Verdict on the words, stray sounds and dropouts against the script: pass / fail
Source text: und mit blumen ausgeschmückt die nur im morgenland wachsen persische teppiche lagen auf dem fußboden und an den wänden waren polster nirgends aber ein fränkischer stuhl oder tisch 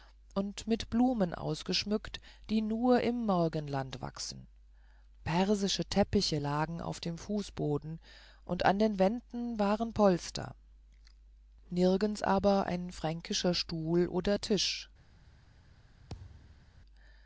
fail